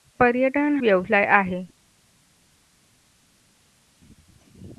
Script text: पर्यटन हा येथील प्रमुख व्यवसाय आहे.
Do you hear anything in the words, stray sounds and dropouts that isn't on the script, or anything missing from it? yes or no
yes